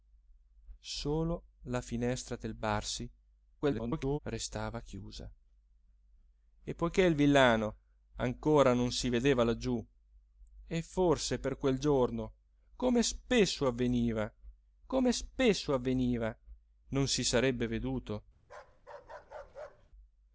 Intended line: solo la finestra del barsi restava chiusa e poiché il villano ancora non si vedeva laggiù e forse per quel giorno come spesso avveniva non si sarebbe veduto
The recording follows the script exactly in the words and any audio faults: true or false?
false